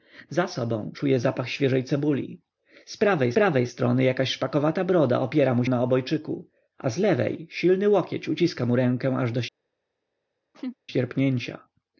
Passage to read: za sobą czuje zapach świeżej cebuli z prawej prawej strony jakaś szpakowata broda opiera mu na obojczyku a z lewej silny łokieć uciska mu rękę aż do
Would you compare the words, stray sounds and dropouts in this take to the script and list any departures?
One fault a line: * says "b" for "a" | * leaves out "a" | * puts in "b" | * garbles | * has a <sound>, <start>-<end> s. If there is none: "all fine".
* has a laugh, 10.5-10.8 s